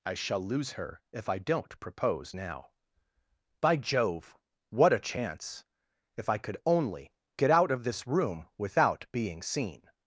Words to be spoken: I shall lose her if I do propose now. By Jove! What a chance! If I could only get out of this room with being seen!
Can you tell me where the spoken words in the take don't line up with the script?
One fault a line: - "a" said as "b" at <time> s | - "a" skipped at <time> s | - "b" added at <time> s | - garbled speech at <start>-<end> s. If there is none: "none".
- "do" said as "don't" at 1.4 s
- "with" said as "without" at 8.6 s